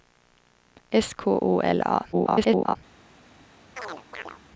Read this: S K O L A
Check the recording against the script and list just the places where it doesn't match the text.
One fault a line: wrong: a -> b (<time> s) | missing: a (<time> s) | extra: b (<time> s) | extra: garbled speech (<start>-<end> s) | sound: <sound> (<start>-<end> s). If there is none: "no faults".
extra: garbled speech (2.1-2.8 s)
sound: chirp (3.8-4.4 s)